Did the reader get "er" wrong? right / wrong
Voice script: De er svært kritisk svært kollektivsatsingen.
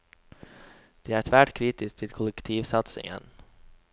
right